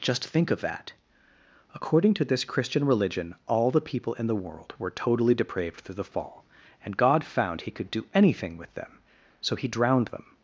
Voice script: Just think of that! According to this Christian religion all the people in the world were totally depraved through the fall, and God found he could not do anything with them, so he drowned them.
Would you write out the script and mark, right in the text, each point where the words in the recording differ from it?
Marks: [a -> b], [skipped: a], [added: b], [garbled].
Just think of that! According to this Christian religion all the people in the world were totally depraved through the fall, and God found he could [skipped: not] do anything with them, so he drowned them.